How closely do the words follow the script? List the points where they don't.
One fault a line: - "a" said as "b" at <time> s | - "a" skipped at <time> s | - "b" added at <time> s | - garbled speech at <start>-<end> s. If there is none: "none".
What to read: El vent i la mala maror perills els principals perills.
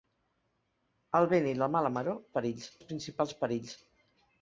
none